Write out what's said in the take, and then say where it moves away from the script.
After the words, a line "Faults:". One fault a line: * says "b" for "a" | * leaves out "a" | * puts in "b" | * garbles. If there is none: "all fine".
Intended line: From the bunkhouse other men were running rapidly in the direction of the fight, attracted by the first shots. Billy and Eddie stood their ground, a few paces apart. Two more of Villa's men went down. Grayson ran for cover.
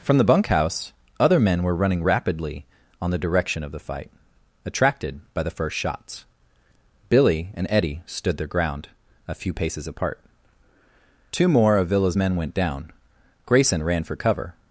From the bunkhouse other men were running rapidly on the direction of the fight, attracted by the first shots. Billy and Eddie stood their ground, a few paces apart. Two more of Villa's men went down. Grayson ran for cover.
Faults:
* says "on" for "in"